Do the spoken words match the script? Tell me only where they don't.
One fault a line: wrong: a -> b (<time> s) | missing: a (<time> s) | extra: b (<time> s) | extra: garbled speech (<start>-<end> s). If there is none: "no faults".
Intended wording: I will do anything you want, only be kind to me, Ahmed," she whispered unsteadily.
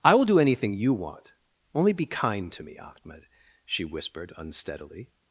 no faults